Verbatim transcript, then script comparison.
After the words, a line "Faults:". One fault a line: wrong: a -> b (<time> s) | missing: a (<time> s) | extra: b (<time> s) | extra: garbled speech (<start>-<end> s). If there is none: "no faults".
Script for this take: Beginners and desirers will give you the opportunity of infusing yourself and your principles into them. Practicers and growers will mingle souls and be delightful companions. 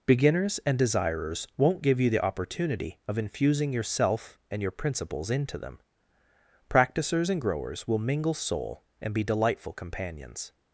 Beginners and desirers won't give you the opportunity of infusing yourself and your principles into them. Practicers and growers will mingle soul and be delightful companions.
Faults:
wrong: will -> won't (1.6 s)
wrong: souls -> soul (8.3 s)